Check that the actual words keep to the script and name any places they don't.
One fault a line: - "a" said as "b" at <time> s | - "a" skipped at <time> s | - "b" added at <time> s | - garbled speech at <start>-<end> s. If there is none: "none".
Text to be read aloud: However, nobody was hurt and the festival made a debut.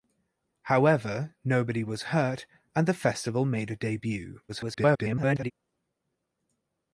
- garbled speech at 4.5-5.5 s